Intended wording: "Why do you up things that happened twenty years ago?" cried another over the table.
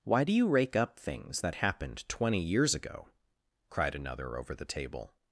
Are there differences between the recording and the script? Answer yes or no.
yes